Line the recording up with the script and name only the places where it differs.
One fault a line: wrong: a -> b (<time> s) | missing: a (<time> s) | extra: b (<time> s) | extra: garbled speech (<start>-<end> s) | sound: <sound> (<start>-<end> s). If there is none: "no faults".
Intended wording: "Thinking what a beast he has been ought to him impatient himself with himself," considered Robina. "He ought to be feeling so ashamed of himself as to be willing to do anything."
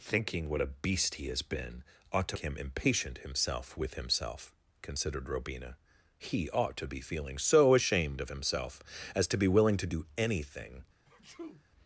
sound: sneeze (11.1-11.6 s)